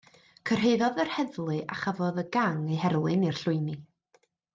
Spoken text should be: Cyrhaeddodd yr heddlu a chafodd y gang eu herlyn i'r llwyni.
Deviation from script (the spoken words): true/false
false